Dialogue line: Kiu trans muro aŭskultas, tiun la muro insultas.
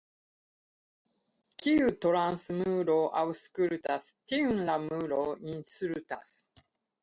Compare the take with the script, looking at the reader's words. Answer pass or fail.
pass